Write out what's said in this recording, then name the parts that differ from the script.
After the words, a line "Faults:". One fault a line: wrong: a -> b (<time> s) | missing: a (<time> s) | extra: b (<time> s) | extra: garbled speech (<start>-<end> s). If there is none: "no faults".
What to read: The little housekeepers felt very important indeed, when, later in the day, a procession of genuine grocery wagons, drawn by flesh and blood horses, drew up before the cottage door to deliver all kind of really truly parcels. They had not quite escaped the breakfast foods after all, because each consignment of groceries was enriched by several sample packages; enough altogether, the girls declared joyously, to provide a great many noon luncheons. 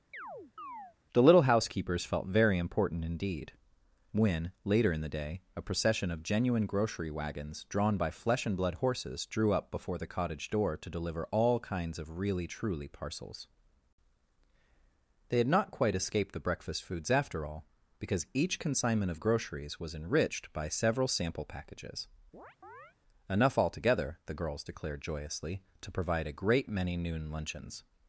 The little housekeepers felt very important indeed, when, later in the day, a procession of genuine grocery wagons, drawn by flesh and blood horses, drew up before the cottage door to deliver all kinds of really truly parcels. They had not quite escaped the breakfast foods after all, because each consignment of groceries was enriched by several sample packages; enough altogether, the girls declared joyously, to provide a great many noon luncheons.
Faults:
wrong: kind -> kinds (11.6 s)